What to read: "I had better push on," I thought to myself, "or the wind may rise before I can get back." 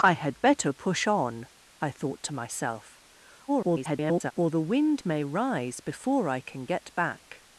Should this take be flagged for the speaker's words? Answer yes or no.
yes